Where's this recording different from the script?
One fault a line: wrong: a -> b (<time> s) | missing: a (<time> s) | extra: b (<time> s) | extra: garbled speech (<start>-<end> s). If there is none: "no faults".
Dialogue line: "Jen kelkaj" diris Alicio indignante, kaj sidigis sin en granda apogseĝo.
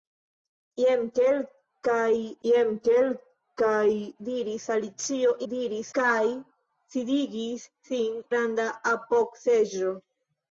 extra: jen kelkaj (2.5 s)
wrong: indignante -> diris (5.5 s)
missing: en (8.2 s)